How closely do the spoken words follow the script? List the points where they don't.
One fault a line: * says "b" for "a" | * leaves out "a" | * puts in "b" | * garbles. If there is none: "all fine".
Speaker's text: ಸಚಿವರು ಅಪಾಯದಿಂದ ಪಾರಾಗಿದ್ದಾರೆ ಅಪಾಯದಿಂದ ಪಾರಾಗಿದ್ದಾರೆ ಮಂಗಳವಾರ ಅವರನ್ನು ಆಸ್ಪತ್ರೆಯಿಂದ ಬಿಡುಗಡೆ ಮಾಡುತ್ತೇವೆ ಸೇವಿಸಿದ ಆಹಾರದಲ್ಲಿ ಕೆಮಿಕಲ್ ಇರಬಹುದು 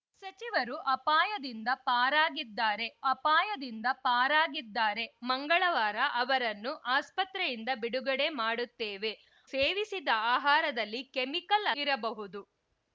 all fine